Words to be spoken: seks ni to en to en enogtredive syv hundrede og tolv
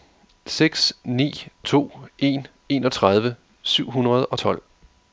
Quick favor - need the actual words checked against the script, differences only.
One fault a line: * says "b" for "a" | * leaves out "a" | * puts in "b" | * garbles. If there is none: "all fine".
* leaves out "to en"